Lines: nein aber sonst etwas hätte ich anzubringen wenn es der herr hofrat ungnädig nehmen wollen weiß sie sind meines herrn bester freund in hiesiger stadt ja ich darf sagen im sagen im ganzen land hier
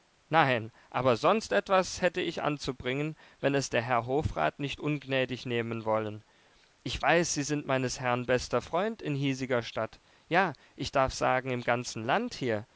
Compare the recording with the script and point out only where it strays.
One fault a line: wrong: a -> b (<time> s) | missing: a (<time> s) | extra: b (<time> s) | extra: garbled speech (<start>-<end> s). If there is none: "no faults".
extra: nicht (4.6 s)
extra: ich (6.8 s)
missing: sagen im (11.6 s)